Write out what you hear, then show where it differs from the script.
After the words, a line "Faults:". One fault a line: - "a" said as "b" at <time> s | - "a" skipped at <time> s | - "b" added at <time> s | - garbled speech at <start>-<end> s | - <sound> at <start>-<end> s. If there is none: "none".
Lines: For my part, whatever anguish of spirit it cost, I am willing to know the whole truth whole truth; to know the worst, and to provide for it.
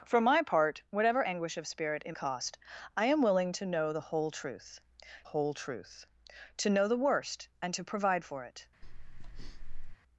For my part, whatever anguish of spirit it cost, I am willing to know the whole truth whole truth; to know the worst, and to provide for it.
Faults:
- breath at 8.8-10.0 s